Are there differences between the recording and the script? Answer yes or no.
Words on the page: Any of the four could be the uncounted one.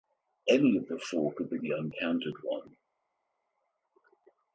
no